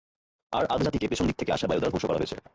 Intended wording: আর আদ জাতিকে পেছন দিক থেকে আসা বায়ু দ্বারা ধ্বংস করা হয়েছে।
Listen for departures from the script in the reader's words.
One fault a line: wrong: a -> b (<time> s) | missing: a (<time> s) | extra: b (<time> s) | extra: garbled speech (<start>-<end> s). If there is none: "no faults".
no faults